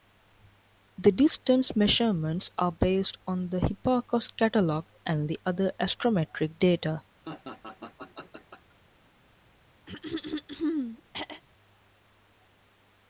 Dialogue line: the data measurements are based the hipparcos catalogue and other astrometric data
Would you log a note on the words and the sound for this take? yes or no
yes